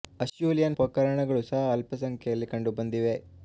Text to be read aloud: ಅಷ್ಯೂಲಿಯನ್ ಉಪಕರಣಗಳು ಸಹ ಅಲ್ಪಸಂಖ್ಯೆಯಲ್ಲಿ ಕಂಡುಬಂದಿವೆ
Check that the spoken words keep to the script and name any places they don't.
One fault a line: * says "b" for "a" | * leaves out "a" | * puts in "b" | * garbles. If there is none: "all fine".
all fine